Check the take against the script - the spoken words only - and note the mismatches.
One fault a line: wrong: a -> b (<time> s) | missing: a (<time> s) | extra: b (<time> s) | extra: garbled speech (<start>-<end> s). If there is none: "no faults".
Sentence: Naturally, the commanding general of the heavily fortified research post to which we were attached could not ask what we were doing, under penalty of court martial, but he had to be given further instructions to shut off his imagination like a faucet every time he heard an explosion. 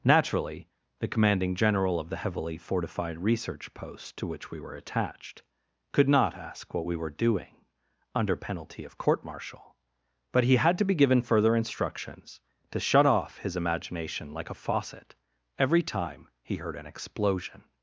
no faults